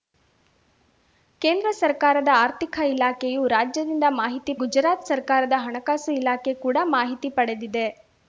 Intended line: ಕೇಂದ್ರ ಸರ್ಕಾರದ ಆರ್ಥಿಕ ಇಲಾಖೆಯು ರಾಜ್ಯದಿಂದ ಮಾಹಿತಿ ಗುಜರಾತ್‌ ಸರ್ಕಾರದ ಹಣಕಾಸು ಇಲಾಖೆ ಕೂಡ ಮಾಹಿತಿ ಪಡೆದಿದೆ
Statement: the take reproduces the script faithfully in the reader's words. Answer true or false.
true